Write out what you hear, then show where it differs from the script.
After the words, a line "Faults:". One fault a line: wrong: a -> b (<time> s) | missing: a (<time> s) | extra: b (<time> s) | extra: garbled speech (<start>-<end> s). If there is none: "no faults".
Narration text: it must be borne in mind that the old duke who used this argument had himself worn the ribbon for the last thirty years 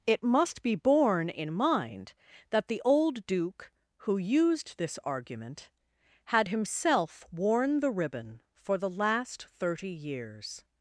it must be borne in mind that the old duke who used this argument had himself worn the ribbon for the last thirty years
Faults:
no faults